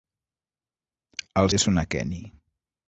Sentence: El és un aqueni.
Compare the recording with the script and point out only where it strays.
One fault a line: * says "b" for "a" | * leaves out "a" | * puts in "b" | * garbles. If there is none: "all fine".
all fine